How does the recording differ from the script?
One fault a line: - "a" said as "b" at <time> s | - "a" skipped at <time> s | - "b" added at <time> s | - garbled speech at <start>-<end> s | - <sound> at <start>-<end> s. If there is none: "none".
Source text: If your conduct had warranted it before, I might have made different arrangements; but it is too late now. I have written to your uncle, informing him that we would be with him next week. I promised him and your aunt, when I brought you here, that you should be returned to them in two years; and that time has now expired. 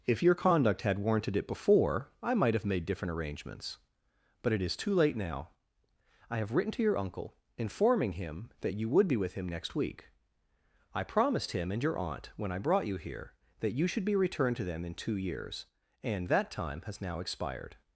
- "we" said as "you" at 8.7 s